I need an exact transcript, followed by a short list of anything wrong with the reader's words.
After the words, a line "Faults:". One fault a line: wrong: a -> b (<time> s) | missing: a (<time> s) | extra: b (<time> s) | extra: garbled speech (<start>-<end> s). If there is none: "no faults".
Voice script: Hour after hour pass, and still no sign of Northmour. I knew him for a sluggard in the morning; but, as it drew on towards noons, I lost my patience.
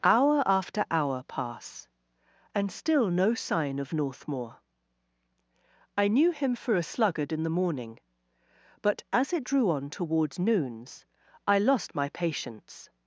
Hour after hour pass, and still no sign of Northmour. I knew him for a sluggard in the morning; but, as it drew on towards noons, I lost my patience.
Faults:
no faults